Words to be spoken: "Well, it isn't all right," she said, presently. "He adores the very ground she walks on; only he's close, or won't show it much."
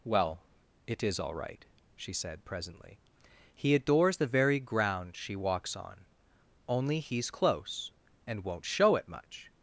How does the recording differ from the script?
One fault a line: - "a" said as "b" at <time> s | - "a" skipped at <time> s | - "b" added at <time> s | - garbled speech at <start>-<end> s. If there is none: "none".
- "isn't" said as "is" at 1.0 s
- "or" said as "and" at 8.2 s